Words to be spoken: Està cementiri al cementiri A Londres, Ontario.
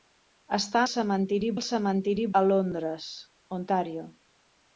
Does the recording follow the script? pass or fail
pass